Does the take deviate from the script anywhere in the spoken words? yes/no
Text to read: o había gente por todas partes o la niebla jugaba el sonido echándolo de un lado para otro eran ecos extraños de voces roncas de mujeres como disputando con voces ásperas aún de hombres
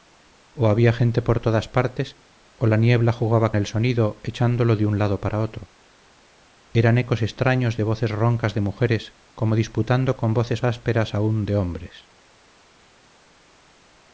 no